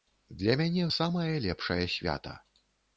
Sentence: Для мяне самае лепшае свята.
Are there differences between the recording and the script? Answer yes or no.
no